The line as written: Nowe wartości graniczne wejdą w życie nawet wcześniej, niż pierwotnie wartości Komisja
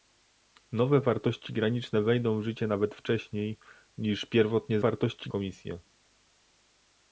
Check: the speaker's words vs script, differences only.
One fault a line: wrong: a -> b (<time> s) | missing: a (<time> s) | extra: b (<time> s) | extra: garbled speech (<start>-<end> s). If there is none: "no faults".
no faults